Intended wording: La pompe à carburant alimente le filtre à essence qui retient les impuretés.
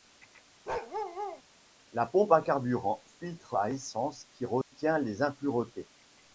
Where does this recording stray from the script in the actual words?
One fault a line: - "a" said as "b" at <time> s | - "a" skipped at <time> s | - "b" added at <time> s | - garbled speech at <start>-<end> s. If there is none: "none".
- "alimente le" skipped at 3.0 s